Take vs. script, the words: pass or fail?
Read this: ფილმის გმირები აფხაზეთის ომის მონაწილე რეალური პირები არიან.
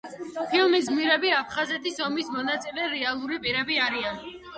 pass